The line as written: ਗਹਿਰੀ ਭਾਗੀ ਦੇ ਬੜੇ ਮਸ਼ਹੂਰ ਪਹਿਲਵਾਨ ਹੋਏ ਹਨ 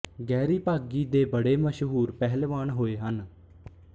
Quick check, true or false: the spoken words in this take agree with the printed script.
true